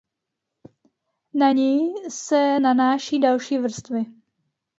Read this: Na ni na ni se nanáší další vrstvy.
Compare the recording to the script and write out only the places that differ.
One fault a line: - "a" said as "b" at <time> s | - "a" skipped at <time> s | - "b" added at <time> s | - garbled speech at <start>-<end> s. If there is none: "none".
- "na ni" skipped at 1.9 s